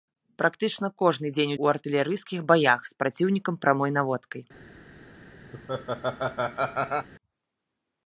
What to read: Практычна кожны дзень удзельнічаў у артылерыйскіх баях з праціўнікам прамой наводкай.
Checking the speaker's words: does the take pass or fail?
fail